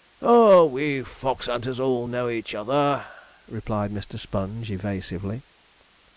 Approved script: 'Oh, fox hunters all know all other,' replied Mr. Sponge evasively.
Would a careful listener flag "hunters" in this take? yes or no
no